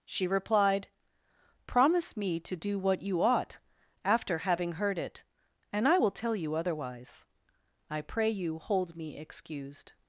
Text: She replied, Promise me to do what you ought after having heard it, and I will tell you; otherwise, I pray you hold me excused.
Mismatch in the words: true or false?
false